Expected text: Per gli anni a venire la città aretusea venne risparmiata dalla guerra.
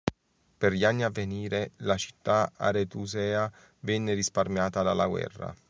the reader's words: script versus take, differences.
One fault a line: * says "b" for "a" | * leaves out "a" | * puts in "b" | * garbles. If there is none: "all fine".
all fine